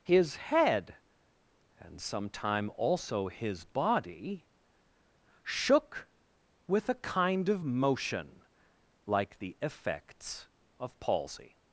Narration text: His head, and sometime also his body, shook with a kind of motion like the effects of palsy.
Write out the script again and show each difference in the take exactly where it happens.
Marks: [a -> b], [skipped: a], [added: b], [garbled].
His head, and sometime also his body, shook with a kind of motion like the effects of palsy.